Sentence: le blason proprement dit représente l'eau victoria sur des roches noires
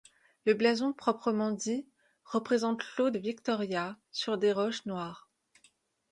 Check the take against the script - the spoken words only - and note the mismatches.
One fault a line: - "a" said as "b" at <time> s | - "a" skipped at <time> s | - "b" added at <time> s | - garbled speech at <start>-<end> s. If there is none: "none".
none